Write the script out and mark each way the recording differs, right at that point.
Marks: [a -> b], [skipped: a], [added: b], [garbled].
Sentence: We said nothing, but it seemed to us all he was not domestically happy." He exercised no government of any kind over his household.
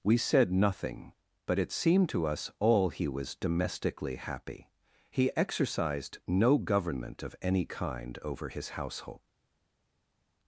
We said nothing, but it seemed to us all he was [skipped: not] domestically happy." He exercised no government of any kind over his household.